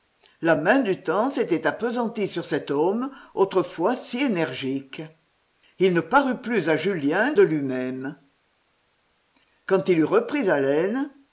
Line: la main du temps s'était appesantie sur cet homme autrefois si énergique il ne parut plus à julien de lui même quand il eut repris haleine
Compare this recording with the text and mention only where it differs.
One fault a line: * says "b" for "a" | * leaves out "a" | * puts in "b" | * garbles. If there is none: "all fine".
all fine